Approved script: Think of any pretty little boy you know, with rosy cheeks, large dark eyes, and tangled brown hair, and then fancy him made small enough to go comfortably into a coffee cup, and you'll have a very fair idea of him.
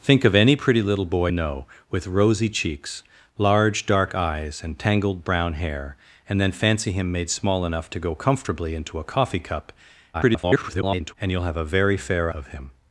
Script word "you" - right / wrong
wrong